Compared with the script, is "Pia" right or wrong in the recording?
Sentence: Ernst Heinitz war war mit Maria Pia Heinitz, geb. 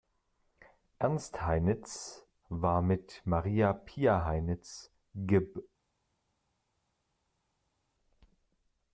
right